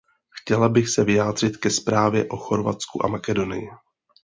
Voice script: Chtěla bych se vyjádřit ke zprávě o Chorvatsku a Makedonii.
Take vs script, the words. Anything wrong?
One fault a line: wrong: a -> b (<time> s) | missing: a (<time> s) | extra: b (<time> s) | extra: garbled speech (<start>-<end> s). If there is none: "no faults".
no faults